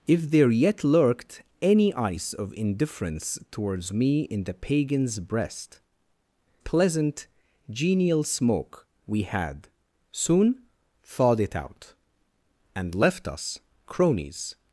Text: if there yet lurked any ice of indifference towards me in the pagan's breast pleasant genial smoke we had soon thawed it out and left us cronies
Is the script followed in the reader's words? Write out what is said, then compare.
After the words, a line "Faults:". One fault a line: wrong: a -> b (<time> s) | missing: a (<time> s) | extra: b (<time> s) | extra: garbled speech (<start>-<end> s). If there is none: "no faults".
if there yet lurked any ice of indifference towards me in the pagan's breast pleasant genial smoke we had soon thawed it out and left us cronies
Faults:
no faults